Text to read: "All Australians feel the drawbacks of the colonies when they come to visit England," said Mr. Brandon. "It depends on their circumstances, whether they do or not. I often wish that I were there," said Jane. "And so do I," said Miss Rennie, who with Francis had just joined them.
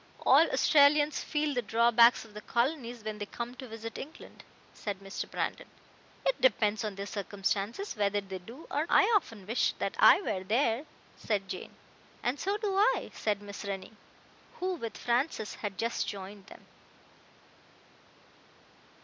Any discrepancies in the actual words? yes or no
yes